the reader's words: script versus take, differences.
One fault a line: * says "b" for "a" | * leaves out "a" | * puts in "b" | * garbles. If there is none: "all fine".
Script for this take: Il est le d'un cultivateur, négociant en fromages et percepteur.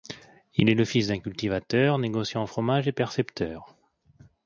* puts in "fils"